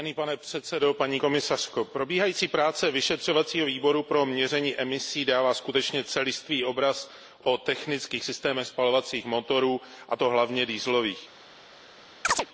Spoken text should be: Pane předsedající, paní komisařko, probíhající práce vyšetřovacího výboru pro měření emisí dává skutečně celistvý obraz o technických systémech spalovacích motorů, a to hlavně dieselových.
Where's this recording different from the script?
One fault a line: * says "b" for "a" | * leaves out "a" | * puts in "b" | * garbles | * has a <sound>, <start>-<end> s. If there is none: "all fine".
* has a chirp, 12.2-12.5 s